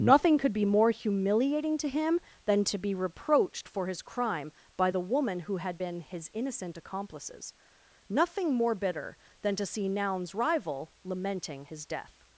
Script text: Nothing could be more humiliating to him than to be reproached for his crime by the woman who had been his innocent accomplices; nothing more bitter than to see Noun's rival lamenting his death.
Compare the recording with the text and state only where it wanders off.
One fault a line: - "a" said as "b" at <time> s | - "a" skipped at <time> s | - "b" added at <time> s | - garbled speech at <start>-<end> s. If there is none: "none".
none